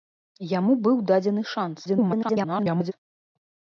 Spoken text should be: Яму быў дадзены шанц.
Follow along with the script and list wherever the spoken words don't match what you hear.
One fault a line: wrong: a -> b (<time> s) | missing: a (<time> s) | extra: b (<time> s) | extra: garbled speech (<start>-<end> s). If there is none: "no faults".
extra: garbled speech (1.8-2.9 s)